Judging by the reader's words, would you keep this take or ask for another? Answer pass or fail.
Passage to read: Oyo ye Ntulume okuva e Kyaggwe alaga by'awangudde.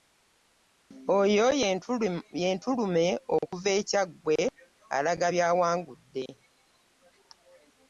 pass